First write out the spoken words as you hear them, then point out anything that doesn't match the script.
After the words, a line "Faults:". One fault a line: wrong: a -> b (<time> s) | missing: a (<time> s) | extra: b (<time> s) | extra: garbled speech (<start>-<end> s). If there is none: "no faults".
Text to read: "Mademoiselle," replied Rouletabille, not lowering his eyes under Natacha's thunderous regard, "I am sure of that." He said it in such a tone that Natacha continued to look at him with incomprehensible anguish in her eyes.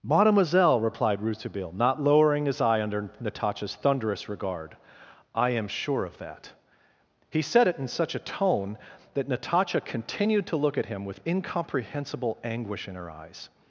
"Mademoiselle," replied Rouletabille, not lowering his eye under Natacha's thunderous regard, "I am sure of that." He said it in such a tone that Natacha continued to look at him with incomprehensible anguish in her eyes.
Faults:
wrong: eyes -> eye (2.6 s)